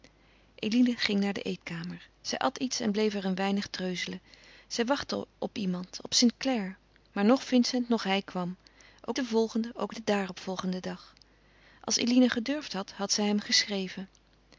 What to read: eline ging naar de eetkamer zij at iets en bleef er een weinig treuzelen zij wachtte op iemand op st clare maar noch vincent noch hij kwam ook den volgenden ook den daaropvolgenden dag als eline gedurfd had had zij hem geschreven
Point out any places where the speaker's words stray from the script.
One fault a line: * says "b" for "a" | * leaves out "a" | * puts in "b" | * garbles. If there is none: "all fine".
all fine